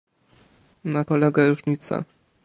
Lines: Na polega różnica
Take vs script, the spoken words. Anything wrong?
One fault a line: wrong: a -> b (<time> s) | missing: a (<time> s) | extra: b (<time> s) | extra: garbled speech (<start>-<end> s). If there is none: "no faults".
no faults